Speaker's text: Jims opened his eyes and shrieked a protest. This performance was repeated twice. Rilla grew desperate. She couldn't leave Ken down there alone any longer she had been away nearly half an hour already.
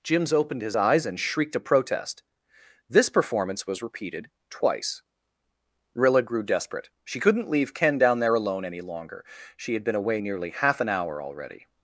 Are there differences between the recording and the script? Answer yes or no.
no